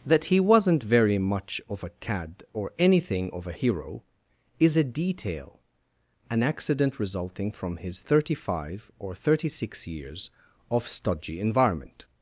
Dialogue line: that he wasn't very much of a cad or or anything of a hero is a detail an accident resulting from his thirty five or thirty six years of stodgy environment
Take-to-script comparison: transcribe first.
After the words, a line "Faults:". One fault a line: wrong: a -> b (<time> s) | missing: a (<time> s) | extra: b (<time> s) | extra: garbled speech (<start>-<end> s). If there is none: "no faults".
that he wasn't very much of a cad or anything of a hero is a detail an accident resulting from his thirty five or thirty six years of stodgy environment
Faults:
missing: or (2.7 s)